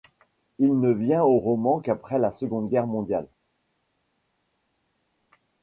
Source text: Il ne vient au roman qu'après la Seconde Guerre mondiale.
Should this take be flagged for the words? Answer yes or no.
no